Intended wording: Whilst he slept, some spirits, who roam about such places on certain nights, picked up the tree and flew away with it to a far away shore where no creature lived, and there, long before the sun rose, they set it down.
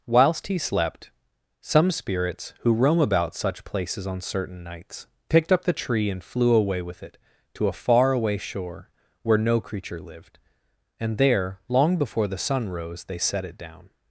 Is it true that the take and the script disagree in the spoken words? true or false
false